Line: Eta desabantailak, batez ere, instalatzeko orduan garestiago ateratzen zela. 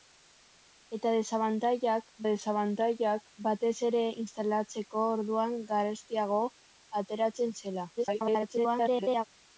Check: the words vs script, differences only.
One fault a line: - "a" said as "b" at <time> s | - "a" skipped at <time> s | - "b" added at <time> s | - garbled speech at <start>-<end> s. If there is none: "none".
- "desabantailak" added at 2.3 s
- garbled speech at 8.0-9.2 s